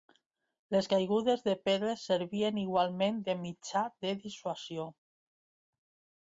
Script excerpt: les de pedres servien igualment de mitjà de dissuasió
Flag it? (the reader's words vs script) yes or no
yes